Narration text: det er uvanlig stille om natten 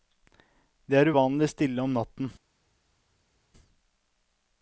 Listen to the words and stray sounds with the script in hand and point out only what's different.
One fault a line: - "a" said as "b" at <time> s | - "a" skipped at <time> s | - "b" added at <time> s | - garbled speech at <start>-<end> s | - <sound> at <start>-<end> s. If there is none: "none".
none